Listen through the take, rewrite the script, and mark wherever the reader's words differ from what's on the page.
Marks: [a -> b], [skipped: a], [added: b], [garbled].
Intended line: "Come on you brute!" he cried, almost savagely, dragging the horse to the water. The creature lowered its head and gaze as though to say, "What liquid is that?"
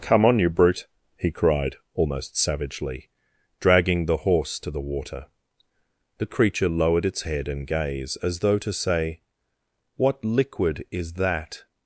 "Come on you brute!" he cried, almost savagely, dragging the horse to the water. The creature lowered its head and gaze as though to say, "What liquid is that?"